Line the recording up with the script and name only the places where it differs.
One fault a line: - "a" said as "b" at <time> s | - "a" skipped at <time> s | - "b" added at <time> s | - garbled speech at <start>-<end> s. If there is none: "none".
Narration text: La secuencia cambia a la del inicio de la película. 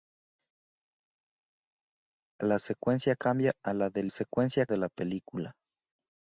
- "inicio" said as "secuencia" at 4.1 s